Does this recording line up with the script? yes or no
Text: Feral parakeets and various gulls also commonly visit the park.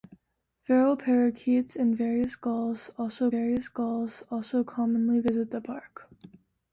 no